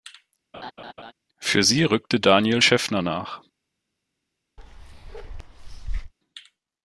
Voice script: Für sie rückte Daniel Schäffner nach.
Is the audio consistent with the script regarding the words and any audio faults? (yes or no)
no